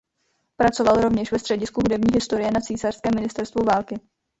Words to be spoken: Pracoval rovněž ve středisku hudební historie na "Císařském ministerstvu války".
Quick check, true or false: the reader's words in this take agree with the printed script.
true